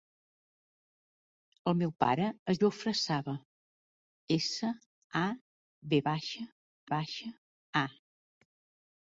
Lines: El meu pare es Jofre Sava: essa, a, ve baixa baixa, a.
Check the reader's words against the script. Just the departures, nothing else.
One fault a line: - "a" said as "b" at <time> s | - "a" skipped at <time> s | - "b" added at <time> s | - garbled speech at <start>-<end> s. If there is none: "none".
none